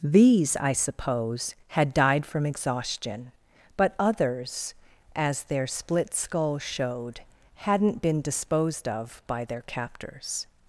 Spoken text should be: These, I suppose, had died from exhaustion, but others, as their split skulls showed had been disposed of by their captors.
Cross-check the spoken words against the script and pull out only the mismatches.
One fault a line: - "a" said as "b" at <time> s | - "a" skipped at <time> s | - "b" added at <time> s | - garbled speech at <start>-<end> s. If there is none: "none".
- "had" said as "hadn't" at 7.5 s